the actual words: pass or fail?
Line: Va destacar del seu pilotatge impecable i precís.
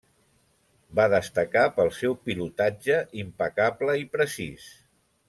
fail